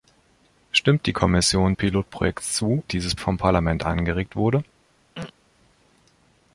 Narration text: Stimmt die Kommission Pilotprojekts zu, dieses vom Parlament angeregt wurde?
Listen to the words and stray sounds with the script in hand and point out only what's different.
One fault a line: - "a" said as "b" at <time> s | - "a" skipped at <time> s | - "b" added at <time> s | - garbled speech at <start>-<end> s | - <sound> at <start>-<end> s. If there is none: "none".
- throat clearing at 5.1-5.3 s